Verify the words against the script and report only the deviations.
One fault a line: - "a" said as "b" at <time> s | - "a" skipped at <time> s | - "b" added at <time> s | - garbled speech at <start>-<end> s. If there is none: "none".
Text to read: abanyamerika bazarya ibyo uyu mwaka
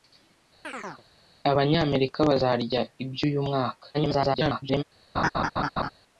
- garbled speech at 3.9-4.8 s